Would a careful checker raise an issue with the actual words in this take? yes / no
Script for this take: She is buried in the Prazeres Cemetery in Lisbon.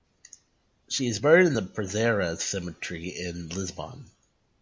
no